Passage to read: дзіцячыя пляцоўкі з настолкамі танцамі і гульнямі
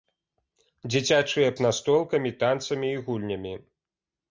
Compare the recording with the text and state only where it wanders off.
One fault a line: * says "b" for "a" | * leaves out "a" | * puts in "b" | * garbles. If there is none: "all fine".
* leaves out "пляцоўкі"